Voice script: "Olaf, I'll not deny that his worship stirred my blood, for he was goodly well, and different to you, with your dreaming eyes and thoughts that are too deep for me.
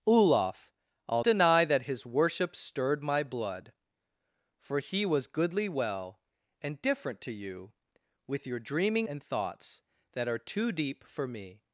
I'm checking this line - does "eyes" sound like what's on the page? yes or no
no